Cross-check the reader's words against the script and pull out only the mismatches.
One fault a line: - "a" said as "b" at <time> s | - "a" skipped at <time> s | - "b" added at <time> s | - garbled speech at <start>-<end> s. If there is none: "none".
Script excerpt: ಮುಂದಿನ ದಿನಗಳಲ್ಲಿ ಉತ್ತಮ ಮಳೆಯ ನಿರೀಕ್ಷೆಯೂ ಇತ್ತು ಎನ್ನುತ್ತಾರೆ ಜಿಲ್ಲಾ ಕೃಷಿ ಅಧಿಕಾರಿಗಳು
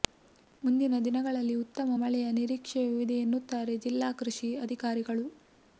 - "ಇತ್ತು" said as "ಇದೆ" at 3.0 s